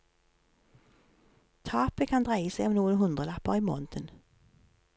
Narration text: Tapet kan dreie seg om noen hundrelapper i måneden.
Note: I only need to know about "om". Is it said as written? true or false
true